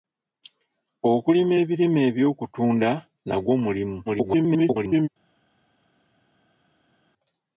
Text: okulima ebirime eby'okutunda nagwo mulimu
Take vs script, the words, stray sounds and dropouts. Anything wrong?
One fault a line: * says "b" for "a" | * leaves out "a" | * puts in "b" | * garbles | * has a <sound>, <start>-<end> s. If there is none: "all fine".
* garbles